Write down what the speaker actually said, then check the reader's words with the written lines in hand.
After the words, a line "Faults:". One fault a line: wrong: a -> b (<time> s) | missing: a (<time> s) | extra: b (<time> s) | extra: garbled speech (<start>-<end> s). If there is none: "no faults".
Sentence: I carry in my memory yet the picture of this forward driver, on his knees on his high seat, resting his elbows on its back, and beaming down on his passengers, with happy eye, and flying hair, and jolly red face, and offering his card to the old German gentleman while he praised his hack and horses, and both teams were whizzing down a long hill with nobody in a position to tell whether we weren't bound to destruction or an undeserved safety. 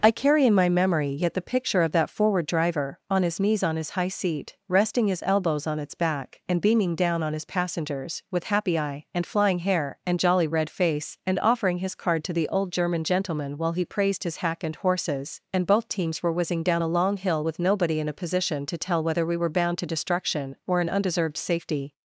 I carry in my memory yet the picture of that forward driver, on his knees on his high seat, resting his elbows on its back, and beaming down on his passengers, with happy eye, and flying hair, and jolly red face, and offering his card to the old German gentleman while he praised his hack and horses, and both teams were whizzing down a long hill with nobody in a position to tell whether we were bound to destruction or an undeserved safety.
Faults:
wrong: this -> that (1.9 s)
wrong: weren't -> were (19.4 s)